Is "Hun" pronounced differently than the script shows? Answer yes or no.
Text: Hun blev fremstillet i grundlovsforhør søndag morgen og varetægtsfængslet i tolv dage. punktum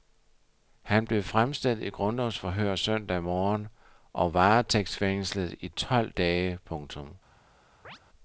yes